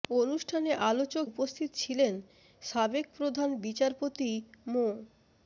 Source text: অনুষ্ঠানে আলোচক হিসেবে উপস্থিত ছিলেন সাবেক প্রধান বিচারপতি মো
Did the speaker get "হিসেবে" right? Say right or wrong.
wrong